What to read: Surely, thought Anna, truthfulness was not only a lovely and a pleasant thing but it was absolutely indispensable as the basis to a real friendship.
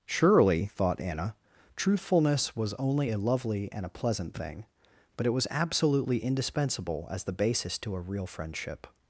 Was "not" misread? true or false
true